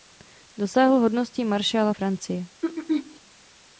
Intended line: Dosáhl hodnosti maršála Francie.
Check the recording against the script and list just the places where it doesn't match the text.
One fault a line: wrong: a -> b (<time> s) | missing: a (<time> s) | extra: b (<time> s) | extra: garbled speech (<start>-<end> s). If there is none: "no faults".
no faults